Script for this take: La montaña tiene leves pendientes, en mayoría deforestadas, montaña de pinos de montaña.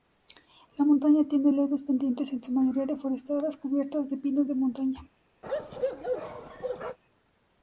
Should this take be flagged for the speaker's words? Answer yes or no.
yes